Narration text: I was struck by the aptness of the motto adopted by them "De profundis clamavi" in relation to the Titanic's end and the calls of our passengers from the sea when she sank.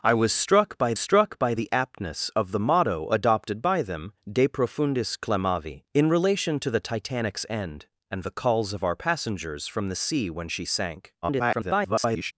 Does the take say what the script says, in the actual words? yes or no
no